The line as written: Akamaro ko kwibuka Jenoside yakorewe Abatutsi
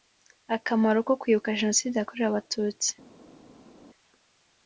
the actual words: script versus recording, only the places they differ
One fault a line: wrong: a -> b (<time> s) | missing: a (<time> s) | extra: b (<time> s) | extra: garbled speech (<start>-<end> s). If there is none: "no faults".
no faults